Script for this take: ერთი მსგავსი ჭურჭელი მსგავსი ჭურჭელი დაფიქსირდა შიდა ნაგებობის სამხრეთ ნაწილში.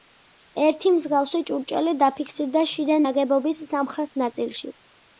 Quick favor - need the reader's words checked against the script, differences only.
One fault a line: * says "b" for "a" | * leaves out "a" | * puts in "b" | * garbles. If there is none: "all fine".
* leaves out "მსგავსი ჭურჭელი"